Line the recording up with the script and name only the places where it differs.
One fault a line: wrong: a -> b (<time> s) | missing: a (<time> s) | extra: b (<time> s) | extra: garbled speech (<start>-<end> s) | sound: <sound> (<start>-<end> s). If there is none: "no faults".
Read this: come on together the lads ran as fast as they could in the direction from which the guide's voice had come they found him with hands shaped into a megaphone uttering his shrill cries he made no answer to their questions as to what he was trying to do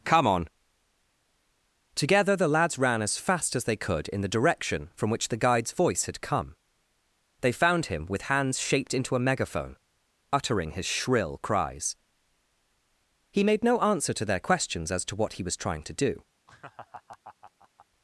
sound: laugh (16.5-17.9 s)